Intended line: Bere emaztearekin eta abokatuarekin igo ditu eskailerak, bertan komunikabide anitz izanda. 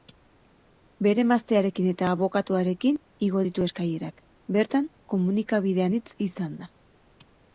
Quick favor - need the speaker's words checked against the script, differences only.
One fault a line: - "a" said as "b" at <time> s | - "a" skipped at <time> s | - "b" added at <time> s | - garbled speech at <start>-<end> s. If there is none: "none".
none